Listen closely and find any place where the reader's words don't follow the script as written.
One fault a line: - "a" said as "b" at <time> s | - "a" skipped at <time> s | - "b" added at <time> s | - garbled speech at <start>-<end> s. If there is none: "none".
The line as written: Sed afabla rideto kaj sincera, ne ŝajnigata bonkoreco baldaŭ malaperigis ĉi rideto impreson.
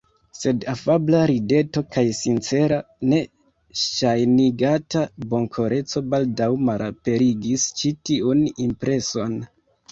- "rideto" said as "tiun" at 8.1 s